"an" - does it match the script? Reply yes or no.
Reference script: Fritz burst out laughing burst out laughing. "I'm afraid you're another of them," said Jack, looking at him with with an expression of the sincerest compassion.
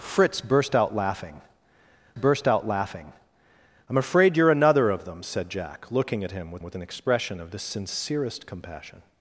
yes